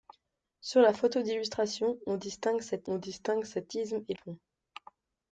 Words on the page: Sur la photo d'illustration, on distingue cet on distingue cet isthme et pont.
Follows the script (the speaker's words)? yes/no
yes